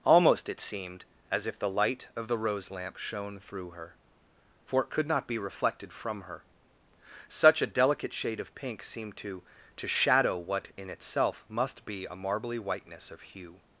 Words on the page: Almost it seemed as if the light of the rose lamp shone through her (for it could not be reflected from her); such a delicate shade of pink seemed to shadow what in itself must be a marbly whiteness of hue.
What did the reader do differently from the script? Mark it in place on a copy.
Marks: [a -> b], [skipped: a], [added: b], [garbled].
Almost it seemed as if the light of the rose lamp shone through her (for it could not be reflected from her); such a delicate shade of pink seemed to [added: to] shadow what in itself must be a marbly whiteness of hue.